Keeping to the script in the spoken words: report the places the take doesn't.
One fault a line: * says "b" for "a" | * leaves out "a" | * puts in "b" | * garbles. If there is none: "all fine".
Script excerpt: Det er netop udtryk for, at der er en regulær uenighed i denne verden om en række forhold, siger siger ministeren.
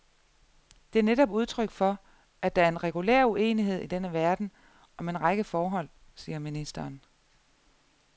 * leaves out "siger"